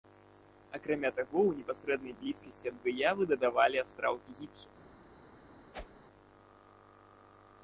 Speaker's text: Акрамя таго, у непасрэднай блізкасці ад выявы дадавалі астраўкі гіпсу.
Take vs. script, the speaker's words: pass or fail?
pass